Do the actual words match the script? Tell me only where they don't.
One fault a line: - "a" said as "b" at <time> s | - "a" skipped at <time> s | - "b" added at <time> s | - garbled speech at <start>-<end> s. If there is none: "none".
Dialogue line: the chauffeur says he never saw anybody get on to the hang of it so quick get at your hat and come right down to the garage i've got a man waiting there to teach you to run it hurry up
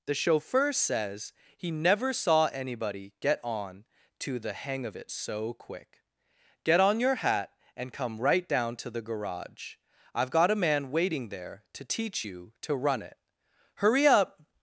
- "at" said as "on" at 6.8 s